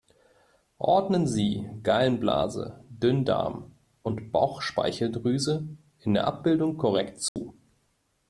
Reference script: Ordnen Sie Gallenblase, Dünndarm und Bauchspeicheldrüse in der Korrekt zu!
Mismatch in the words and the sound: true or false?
true